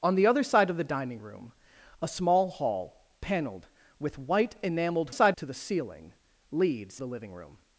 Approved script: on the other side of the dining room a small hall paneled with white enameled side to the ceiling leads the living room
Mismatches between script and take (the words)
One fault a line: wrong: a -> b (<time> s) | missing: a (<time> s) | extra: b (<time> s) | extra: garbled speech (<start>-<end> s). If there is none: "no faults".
no faults